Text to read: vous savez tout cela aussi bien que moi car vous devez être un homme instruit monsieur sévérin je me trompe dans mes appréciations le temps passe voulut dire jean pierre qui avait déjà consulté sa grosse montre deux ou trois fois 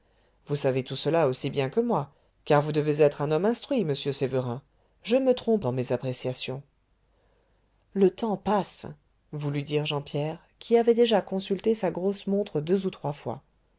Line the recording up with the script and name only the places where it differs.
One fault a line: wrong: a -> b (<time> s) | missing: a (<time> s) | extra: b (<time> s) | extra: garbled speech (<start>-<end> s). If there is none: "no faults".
no faults